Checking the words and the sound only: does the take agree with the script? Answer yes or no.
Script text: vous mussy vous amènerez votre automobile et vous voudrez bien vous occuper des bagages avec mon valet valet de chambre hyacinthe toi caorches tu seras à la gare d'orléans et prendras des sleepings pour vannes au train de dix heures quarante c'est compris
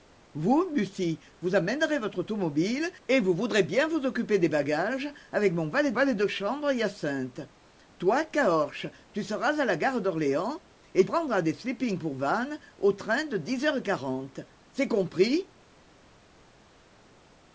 yes